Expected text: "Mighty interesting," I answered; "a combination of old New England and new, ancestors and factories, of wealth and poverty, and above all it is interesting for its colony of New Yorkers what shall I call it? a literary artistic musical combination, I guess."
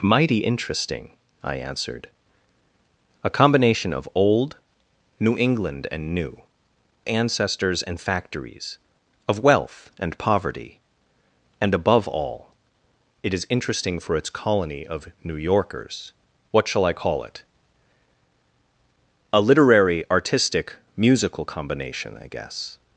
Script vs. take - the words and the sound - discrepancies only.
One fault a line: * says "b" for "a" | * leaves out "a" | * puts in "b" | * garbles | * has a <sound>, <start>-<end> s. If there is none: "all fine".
all fine